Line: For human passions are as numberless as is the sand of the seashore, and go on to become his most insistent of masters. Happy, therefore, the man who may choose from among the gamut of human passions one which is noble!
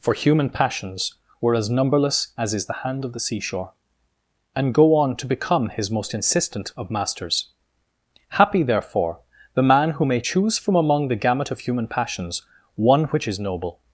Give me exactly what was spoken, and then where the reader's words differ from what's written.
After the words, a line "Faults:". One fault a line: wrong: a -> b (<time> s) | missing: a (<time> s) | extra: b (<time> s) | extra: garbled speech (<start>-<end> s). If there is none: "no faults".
For human passions were as numberless as is the hand of the seashore, and go on to become his most insistent of masters. Happy, therefore, the man who may choose from among the gamut of human passions one which is noble!
Faults:
wrong: are -> were (1.4 s)
wrong: sand -> hand (2.8 s)